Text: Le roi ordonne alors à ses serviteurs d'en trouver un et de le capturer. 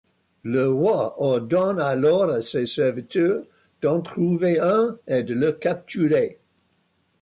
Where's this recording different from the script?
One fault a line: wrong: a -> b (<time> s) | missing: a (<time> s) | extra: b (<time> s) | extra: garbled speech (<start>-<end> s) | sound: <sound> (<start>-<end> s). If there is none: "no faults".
no faults